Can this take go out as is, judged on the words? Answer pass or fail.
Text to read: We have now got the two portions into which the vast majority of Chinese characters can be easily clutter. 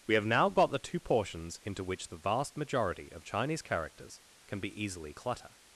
pass